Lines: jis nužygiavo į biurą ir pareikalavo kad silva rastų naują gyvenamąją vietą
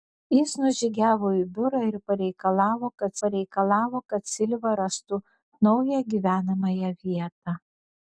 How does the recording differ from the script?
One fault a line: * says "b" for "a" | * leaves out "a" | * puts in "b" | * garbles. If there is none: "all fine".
* puts in "pareikalavo kad"